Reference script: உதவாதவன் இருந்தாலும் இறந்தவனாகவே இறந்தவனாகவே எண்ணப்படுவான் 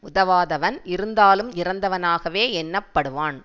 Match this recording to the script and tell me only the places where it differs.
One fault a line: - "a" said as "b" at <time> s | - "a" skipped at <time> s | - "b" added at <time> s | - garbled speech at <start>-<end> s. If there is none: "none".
- "இறந்தவனாகவே" skipped at 2.4 s